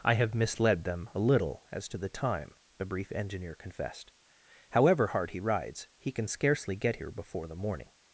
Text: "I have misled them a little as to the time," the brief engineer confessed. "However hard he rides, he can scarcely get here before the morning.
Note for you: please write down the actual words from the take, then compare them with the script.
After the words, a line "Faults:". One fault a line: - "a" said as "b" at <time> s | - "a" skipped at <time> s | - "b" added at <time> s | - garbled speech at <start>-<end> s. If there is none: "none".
"I have misled them a little as to the time," the brief engineer confessed. "However hard he rides, he can scarcely get here before the morning.
Faults:
none